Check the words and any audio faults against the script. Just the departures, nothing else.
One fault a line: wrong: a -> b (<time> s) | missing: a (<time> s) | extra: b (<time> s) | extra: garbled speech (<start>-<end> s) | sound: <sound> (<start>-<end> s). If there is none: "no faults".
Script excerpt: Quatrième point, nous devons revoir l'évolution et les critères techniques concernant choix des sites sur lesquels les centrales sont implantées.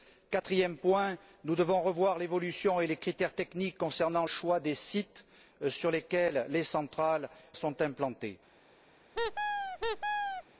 sound: squeak (9.1-10.4 s)